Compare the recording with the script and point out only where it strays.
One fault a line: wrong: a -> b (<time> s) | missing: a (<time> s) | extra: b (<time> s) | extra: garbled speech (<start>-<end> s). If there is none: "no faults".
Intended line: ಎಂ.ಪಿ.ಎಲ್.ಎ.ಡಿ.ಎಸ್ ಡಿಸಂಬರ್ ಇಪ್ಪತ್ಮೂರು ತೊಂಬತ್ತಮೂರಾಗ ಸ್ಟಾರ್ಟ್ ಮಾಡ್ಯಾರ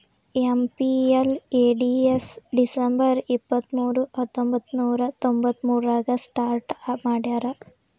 extra: ಹತ್ತೊಂಬಂತ್ತನೂರ (4.2 s)